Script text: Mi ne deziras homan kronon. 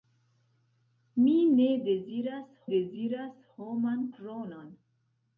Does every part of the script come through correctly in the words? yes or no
no